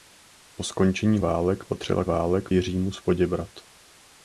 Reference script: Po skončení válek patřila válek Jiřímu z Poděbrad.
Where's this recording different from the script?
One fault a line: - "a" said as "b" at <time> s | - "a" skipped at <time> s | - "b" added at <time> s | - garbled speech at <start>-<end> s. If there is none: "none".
none